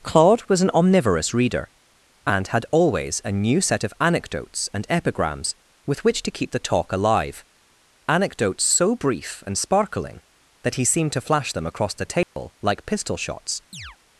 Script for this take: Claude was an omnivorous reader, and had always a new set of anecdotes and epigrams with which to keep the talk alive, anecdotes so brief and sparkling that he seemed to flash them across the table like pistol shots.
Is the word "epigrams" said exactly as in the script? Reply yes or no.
yes